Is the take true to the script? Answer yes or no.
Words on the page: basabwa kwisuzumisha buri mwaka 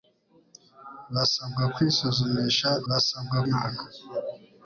no